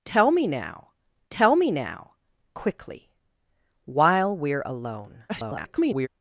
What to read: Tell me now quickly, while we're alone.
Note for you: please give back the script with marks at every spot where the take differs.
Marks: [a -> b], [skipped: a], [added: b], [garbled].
Tell me now [added: tell me now] quickly, while we're alone. [garbled]